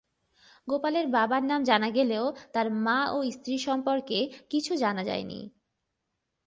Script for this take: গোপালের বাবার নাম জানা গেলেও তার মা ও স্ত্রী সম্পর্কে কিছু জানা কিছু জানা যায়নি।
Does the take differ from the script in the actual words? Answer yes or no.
yes